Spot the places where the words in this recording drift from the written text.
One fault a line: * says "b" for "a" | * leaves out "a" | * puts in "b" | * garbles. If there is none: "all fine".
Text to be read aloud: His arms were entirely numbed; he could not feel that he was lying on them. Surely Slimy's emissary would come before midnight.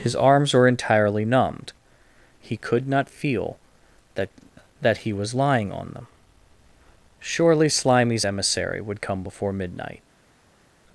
* puts in "that"